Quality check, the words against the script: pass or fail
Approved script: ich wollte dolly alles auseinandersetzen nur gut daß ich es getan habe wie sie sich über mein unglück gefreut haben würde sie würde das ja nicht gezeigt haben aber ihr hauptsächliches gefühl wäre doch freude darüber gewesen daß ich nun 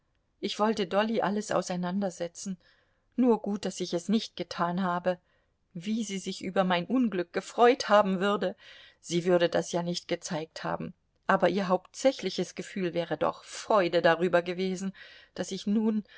fail